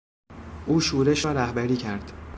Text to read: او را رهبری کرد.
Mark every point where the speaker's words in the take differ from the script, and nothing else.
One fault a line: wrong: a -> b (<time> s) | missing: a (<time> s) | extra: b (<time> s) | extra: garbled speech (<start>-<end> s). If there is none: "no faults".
extra: شورش (0.8 s)